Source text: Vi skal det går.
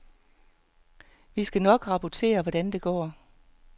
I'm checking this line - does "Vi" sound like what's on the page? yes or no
yes